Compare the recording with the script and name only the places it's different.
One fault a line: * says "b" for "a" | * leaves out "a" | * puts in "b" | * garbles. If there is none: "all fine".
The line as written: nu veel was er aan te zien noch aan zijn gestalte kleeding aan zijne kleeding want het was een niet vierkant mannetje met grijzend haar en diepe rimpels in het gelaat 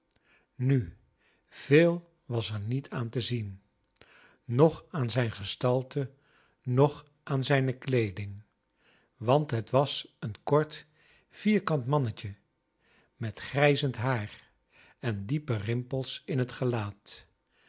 * puts in "niet"
* says "noch" for "kleeding"
* says "kort" for "niet"